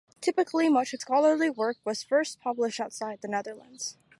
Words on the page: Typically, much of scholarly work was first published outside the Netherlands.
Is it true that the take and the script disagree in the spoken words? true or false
false